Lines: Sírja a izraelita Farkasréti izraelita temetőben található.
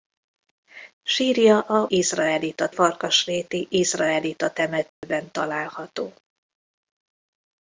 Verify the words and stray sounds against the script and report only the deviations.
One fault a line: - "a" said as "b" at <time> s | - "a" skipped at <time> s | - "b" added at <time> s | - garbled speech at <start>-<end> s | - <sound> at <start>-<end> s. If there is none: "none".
- dropout at 4.9-5.0 s